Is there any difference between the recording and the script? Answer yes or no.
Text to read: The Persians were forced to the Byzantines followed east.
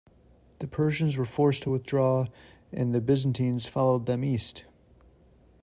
yes